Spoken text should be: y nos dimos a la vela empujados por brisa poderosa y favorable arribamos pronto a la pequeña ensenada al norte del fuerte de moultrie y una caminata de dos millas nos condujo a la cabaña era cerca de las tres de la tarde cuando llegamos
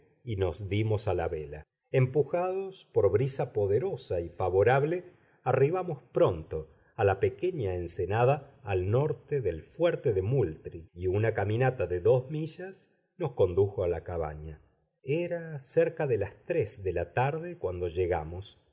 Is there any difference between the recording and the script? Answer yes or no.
no